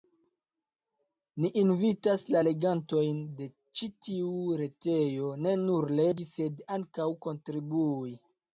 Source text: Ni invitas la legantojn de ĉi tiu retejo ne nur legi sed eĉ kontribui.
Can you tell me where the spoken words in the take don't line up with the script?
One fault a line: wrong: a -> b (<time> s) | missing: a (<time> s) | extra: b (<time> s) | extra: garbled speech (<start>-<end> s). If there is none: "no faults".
wrong: eĉ -> ankaŭ (6.8 s)